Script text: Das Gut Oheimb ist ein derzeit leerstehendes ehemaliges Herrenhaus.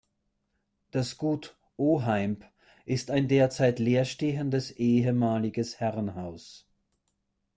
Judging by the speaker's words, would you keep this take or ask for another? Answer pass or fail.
pass